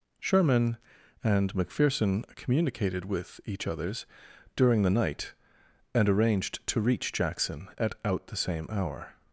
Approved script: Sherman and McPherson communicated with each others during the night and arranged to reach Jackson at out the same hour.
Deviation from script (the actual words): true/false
false